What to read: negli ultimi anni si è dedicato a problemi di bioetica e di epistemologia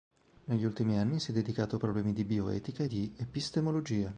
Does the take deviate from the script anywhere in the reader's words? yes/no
no